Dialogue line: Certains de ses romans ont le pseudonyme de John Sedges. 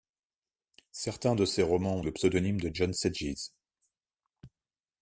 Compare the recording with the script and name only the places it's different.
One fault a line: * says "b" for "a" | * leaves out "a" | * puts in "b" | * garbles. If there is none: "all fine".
all fine